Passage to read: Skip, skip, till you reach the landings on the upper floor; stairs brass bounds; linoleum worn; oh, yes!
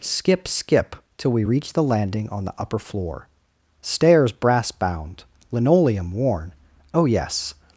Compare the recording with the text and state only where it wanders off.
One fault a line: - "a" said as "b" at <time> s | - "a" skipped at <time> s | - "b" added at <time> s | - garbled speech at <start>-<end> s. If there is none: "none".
- "you" said as "we" at 1.3 s
- "landings" said as "landing" at 1.8 s
- "bounds" said as "bound" at 4.7 s